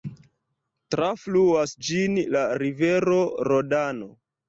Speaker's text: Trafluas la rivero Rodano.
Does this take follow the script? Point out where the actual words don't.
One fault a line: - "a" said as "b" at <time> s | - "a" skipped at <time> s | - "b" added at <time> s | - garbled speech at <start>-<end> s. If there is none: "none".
- "ĝin" added at 1.9 s